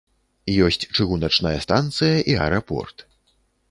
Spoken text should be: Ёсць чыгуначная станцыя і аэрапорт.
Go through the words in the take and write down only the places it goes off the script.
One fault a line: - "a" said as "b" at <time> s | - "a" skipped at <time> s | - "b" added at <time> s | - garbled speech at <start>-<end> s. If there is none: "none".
none